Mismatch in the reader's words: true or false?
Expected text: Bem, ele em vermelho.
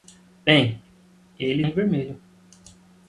false